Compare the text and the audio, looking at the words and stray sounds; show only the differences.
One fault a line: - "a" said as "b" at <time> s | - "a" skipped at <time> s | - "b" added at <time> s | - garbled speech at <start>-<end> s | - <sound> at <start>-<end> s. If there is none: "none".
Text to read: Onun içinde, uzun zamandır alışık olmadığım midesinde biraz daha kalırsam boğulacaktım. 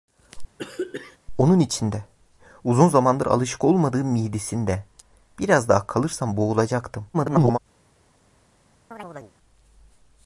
- throat clearing at 0.6-1.2 s
- garbled speech at 7.1-7.6 s
- chirp at 8.9-9.3 s